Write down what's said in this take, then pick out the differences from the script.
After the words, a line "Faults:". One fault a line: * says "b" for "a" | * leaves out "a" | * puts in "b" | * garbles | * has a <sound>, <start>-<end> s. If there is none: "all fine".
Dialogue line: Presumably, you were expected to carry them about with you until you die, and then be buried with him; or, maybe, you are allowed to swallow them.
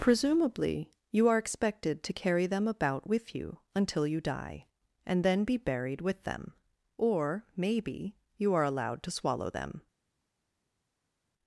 Presumably, you are expected to carry them about with you until you die, and then be buried with them; or, maybe, you are allowed to swallow them.
Faults:
* says "are" for "were"
* says "them" for "him"